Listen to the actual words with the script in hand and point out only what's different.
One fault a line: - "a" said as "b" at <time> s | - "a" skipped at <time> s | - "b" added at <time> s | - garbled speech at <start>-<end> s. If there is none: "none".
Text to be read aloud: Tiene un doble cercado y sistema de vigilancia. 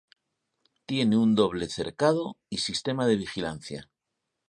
none